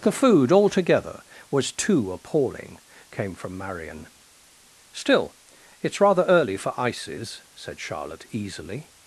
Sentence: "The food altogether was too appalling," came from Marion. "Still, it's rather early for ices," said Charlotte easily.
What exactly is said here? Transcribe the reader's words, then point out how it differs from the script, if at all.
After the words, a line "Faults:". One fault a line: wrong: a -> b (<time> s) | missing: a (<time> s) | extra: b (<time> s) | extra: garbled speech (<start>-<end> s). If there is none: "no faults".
"The food altogether was too appalling," came from Marion. "Still, it's rather early for ices," said Charlotte easily.
Faults:
no faults